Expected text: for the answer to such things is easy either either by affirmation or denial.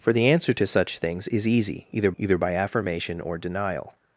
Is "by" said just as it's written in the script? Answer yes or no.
yes